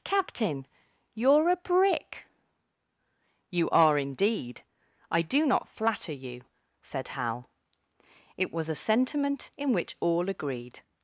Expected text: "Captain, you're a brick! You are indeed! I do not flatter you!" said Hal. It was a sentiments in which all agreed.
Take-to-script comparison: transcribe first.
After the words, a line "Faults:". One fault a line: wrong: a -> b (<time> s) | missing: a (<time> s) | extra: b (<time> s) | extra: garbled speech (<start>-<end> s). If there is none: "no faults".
"Captain, you're a brick! You are indeed! I do not flatter you!" said Hal. It was a sentiment in which all agreed.
Faults:
wrong: sentiments -> sentiment (8.8 s)